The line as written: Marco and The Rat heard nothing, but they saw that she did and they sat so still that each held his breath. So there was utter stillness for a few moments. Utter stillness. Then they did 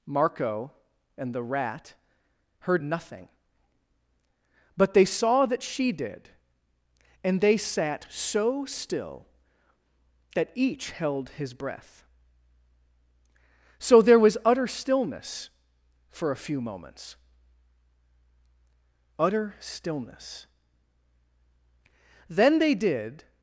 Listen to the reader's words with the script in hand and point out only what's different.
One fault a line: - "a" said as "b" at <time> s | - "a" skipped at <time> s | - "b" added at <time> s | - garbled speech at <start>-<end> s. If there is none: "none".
none